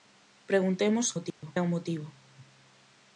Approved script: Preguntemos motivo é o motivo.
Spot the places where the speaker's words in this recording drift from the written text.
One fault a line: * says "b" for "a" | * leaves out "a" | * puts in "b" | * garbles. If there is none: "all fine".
all fine